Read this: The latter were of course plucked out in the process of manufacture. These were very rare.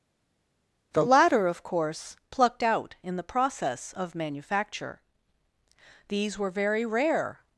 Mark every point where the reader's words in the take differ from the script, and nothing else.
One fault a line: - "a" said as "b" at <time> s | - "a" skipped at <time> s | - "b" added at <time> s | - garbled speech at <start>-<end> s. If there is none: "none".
- "were" skipped at 1.5 s